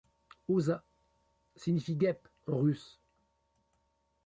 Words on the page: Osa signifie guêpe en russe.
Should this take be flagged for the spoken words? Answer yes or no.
no